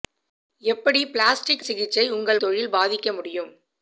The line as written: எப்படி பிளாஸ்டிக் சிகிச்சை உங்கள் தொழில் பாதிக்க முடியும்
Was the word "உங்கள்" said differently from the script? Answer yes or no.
no